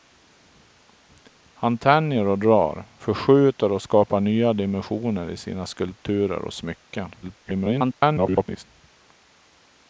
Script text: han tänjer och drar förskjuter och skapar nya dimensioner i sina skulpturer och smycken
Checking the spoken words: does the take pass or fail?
fail